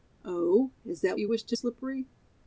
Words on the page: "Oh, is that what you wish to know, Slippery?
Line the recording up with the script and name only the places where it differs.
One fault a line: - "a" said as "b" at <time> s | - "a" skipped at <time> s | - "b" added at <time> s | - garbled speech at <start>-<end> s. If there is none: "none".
- "what" skipped at 1.2 s
- "know" skipped at 1.6 s